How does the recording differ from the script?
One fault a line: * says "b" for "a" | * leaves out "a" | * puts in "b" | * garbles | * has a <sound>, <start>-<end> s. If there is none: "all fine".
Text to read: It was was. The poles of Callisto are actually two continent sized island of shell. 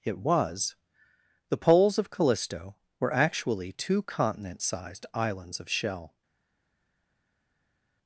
* leaves out "was"
* says "were" for "are"
* says "islands" for "island"